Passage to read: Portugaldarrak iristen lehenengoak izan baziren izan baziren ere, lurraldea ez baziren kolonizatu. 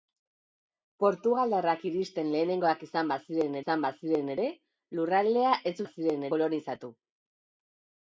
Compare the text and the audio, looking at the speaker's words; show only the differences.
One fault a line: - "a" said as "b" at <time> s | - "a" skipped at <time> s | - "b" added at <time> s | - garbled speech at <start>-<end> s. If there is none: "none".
none